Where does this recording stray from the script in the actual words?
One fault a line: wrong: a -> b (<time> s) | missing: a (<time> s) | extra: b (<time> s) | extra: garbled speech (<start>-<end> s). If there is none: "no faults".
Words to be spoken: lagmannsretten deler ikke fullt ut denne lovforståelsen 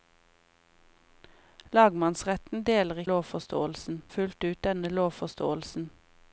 wrong: ikke -> lovforståelsen (3.1 s)